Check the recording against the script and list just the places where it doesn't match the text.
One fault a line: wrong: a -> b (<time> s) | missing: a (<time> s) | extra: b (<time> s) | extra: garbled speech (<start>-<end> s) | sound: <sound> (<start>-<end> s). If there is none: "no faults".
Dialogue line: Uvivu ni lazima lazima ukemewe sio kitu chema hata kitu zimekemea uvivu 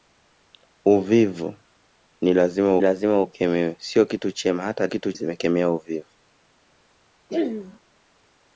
sound: throat clearing (7.3-7.8 s)